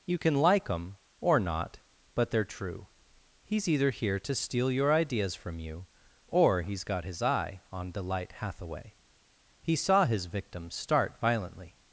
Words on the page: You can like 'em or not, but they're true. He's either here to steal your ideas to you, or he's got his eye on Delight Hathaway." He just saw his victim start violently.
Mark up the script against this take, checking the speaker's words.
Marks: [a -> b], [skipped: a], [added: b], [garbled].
You can like 'em or not, but they're true. He's either here to steal your ideas [to -> from] you, or he's got his eye on Delight Hathaway." He [skipped: just] saw his victim start violently.